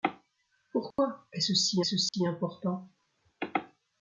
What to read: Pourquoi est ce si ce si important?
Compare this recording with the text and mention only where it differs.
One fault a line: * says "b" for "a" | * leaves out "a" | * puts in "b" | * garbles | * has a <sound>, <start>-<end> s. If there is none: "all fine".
* has a dropout, 0.9-1.0 s
* has a dropout, 2.1-2.1 s